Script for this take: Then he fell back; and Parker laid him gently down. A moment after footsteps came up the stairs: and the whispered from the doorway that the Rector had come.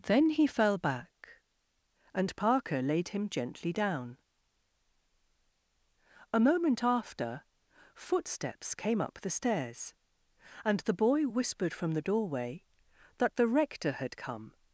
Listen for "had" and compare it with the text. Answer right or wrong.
right